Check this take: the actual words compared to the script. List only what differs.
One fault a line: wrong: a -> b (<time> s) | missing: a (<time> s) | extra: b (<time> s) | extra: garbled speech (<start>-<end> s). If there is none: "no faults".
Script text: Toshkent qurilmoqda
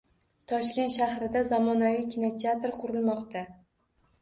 extra: shahrida zamonaviy kinoteatr (0.9 s)